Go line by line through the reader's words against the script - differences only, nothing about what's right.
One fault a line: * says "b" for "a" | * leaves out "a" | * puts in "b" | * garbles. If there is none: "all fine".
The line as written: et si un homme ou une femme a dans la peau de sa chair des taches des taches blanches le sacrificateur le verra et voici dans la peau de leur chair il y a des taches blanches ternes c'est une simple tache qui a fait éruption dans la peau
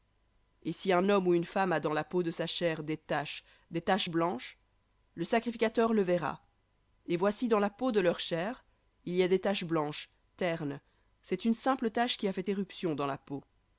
all fine